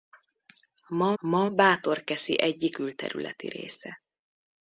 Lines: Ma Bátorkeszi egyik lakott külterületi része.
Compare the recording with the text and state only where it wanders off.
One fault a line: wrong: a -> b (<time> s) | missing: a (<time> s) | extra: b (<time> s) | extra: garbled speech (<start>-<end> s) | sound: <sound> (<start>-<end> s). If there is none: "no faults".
extra: ma (1.2 s)
missing: lakott (2.8 s)